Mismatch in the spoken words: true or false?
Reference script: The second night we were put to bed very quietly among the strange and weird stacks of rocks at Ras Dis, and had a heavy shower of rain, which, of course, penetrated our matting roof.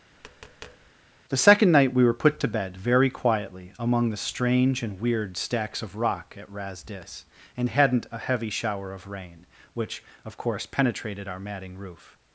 true